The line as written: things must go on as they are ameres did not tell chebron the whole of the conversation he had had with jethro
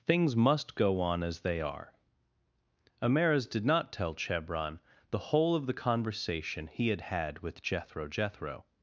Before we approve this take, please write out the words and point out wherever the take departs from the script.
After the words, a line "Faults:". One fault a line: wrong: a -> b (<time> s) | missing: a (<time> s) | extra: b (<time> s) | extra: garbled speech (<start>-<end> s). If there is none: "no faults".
things must go on as they are ameres did not tell chebron the whole of the conversation he had had with jethro jethro
Faults:
extra: jethro (8.1 s)